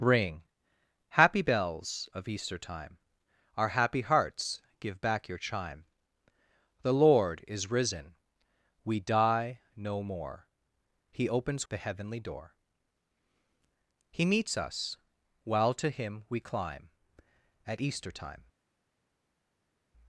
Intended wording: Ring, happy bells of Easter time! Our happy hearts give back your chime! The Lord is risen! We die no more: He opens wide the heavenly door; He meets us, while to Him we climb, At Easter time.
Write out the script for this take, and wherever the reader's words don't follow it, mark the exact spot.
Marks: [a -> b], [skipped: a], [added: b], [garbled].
Ring, happy bells of Easter time! Our happy hearts give back your chime! The Lord is risen! We die no more: He opens [skipped: wide] the heavenly door; He meets us, while to Him we climb, At Easter time.